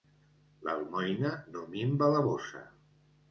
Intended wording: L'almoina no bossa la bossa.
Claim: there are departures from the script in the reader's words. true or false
true